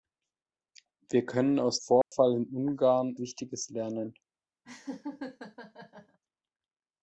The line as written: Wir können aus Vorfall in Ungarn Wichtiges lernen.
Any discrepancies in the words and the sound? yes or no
yes